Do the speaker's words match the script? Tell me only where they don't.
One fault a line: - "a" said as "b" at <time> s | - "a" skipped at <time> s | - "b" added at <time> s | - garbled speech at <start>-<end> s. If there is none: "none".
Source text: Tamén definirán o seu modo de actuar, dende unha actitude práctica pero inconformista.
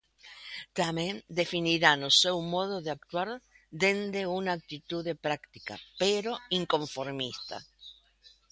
none